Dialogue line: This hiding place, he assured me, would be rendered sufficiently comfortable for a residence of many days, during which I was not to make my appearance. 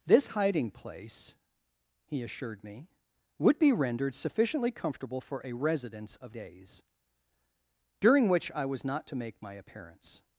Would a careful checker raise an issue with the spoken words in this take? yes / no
yes